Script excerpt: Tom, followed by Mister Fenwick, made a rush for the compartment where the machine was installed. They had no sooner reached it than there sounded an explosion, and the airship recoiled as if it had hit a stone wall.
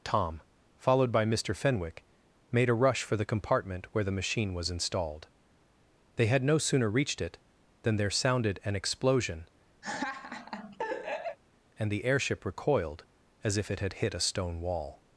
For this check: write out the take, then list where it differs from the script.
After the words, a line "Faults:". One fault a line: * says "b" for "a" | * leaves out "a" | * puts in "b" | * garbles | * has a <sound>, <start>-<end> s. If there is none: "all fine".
Tom, followed by Mister Fenwick, made a rush for the compartment where the machine was installed. They had no sooner reached it than there sounded an explosion, and the airship recoiled as if it had hit a stone wall.
Faults:
* has a laugh, 9.8-11.4 s